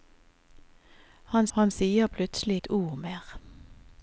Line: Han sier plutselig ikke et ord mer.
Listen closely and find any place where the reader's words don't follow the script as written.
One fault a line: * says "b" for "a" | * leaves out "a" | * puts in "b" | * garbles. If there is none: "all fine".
* puts in "han"
* leaves out "ikke"